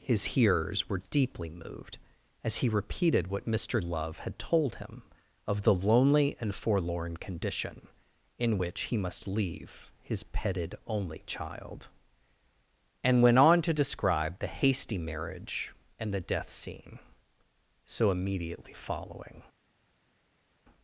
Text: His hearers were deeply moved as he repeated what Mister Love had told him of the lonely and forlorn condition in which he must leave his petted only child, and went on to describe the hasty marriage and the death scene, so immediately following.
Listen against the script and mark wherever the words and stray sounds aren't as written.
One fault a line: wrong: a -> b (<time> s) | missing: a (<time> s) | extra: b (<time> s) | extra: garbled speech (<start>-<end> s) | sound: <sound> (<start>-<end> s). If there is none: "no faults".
no faults